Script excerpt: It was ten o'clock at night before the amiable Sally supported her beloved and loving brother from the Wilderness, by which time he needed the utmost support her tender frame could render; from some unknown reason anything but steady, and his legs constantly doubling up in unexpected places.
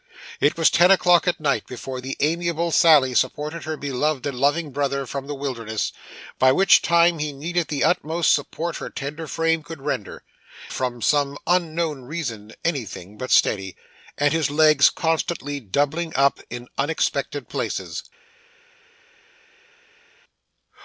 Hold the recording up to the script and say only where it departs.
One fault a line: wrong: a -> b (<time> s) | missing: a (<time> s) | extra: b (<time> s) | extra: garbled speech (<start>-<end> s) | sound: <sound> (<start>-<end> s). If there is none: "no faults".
no faults